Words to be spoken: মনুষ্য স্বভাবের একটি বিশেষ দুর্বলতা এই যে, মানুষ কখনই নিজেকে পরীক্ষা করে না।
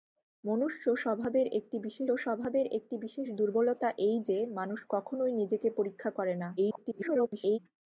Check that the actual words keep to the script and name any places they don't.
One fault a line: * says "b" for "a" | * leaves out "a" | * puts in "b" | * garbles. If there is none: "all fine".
* puts in "স্বভাবের একটি বিশেষ"
* garbles